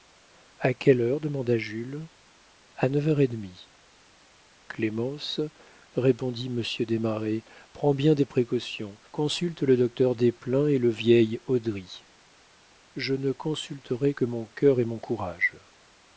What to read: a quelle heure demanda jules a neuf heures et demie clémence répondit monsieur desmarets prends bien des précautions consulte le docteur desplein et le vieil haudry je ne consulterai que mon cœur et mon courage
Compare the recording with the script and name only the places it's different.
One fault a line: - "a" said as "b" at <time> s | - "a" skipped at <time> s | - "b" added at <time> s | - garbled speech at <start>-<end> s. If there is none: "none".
none